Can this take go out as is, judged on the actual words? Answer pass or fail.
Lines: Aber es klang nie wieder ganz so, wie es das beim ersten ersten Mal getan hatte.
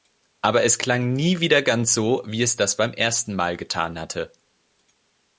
fail